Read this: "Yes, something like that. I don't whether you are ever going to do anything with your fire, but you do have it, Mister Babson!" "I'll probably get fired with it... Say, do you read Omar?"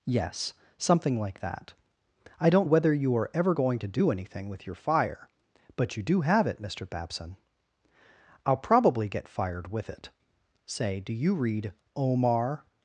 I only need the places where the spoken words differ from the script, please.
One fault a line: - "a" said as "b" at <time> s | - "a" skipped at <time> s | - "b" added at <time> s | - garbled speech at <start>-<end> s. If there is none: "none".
none